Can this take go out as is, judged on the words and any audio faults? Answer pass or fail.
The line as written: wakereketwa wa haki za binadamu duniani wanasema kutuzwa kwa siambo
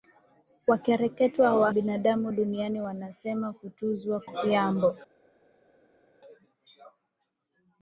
fail